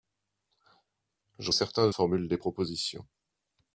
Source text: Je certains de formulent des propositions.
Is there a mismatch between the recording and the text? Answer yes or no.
no